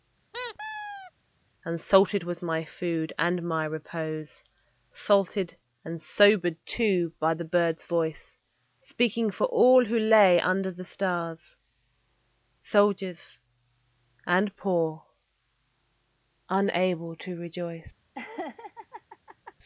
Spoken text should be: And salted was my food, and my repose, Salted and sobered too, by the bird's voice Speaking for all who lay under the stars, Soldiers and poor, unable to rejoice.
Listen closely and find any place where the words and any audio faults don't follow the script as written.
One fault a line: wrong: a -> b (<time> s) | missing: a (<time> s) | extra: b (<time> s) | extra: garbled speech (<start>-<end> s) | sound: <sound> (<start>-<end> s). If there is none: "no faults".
sound: squeak (0.3-1.1 s)
sound: laugh (18.1-19.5 s)